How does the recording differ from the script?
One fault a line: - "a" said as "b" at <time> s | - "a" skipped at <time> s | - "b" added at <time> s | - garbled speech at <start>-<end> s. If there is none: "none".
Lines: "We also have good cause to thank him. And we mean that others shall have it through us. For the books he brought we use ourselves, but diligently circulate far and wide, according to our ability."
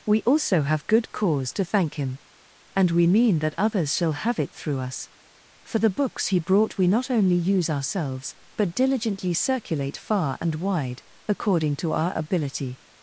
- "not only" added at 6.9 s